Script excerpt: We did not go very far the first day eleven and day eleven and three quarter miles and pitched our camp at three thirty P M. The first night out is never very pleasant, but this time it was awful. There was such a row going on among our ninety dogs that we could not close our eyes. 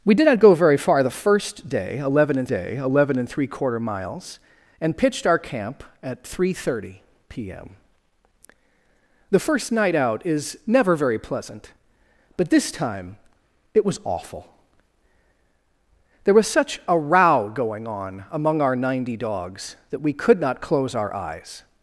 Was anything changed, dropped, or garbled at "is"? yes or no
no